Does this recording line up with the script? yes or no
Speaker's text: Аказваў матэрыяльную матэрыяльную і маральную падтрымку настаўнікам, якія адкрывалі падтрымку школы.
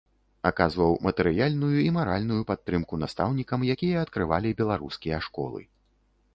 no